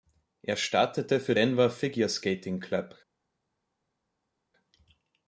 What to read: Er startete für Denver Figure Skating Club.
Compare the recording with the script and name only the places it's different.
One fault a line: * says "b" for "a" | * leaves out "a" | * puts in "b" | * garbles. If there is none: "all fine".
all fine